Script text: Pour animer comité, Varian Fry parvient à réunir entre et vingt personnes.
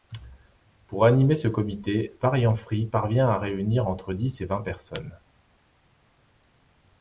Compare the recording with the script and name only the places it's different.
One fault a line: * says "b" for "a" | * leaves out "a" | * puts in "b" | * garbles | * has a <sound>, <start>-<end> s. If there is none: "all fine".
* puts in "ce"
* puts in "dix"